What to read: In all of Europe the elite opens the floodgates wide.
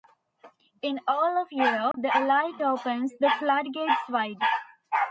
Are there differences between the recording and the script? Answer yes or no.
no